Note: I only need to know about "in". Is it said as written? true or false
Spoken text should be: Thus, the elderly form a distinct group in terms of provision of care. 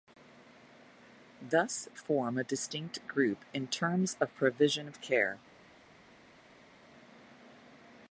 true